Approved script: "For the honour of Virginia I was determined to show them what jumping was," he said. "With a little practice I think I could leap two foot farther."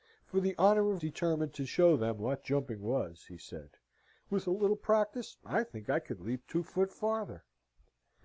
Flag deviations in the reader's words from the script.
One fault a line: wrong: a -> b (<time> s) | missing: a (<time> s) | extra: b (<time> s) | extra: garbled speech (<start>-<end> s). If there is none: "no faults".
missing: Virginia I was (1.0 s)